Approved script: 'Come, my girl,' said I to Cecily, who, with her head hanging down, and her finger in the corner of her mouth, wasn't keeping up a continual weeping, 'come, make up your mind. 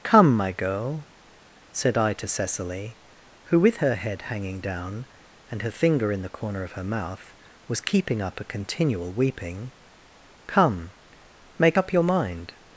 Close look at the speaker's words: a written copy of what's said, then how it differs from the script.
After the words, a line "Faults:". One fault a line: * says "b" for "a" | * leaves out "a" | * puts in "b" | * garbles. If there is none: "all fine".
'Come, my girl,' said I to Cecily, who, with her head hanging down, and her finger in the corner of her mouth, was keeping up a continual weeping, 'come, make up your mind.
Faults:
* says "was" for "wasn't"